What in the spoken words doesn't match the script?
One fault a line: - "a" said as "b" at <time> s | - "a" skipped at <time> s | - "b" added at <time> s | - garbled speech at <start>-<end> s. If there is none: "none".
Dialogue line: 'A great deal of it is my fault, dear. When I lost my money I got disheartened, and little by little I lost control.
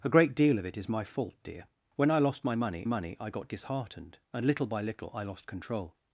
- "money" added at 2.8 s